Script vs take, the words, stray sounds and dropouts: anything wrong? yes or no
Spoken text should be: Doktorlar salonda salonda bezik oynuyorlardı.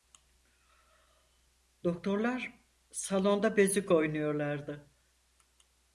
yes